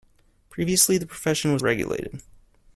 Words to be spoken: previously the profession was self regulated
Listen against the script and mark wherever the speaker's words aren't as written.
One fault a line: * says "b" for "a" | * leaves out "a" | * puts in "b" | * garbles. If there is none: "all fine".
* leaves out "self"